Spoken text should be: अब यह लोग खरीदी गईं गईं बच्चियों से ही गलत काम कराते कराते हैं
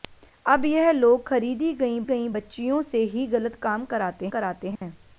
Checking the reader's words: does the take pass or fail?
pass